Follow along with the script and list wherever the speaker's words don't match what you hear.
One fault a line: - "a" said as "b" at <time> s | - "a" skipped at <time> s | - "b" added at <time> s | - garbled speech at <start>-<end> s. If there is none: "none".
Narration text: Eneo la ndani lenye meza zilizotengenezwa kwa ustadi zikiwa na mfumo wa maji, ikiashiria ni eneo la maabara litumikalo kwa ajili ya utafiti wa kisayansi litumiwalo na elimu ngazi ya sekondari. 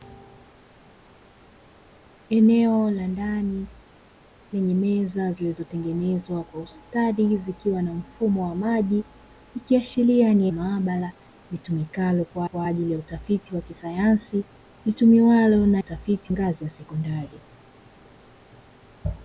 - "eneo la" skipped at 10.5 s
- "kwa" added at 12.4 s
- "elimu" said as "utafiti" at 15.8 s